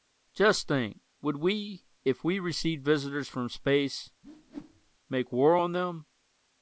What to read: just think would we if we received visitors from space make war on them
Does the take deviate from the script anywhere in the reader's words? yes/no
no